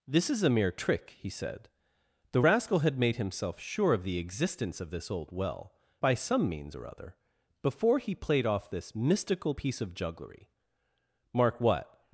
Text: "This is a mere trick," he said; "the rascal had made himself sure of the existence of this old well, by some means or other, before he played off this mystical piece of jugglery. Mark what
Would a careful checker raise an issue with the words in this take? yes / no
no